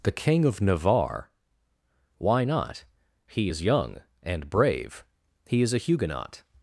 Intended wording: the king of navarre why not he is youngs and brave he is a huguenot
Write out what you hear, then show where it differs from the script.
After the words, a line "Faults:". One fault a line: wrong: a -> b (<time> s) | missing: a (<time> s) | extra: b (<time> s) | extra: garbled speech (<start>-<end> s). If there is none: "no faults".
the king of navarre why not he is young and brave he is a huguenot
Faults:
wrong: youngs -> young (3.6 s)